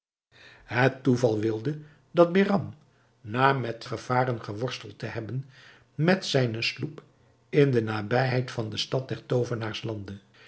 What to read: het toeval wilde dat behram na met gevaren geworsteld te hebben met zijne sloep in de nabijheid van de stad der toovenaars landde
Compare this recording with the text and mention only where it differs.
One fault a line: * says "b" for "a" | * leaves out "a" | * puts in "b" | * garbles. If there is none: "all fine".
all fine